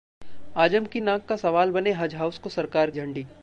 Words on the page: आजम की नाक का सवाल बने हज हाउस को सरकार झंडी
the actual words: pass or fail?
pass